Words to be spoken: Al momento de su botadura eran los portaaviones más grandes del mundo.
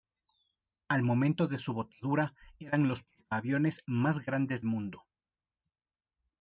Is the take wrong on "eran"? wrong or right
right